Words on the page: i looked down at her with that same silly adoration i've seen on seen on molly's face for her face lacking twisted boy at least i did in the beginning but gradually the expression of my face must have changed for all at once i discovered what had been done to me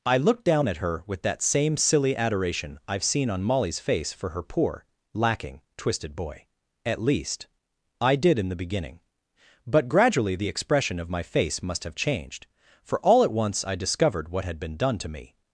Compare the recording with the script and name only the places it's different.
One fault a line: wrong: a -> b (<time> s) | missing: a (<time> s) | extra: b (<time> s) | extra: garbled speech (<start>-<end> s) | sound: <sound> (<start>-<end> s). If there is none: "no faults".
missing: seen on (3.4 s)
wrong: face -> poor (4.4 s)